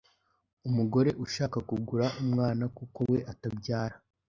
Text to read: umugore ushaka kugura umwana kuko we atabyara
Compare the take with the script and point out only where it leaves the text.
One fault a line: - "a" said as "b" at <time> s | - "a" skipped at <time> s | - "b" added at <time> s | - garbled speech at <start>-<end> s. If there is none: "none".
none